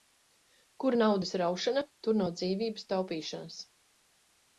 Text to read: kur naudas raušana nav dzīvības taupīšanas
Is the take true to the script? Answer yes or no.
no